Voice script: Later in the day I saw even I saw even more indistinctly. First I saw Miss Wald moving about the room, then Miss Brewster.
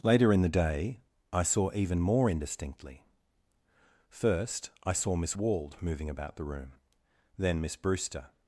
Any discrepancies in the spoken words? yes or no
yes